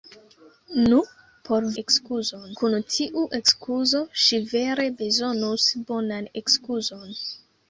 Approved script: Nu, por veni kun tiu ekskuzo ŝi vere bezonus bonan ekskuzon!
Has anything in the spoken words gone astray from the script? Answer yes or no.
yes